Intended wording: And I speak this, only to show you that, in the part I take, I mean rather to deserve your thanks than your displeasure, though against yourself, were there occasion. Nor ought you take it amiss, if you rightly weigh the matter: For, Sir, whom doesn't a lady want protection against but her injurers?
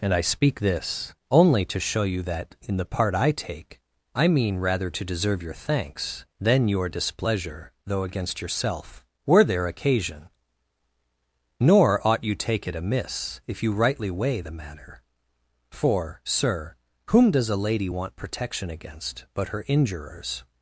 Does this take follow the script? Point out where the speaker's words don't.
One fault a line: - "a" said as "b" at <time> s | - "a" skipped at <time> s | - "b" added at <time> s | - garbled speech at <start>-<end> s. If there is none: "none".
- "doesn't" said as "does" at 17.3 s